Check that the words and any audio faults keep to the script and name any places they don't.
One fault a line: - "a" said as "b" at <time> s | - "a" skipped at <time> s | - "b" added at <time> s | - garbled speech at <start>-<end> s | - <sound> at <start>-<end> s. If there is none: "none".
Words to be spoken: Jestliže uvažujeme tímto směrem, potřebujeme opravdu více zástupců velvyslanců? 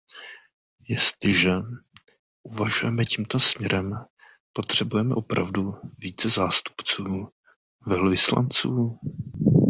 none